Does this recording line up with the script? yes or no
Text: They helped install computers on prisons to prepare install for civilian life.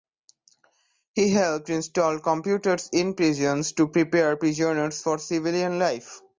no